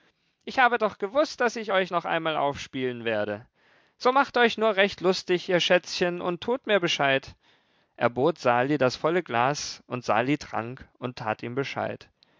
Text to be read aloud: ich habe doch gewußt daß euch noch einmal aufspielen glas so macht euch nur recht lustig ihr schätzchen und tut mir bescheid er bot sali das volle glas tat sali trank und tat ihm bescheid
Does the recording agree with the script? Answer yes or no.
no